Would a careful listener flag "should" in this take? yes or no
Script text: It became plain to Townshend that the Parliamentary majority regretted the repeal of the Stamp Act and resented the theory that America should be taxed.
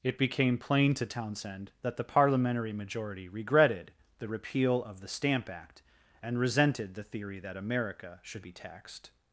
no